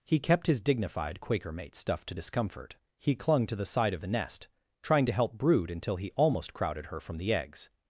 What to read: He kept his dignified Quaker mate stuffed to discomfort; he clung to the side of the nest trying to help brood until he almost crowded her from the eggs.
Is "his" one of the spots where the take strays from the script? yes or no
no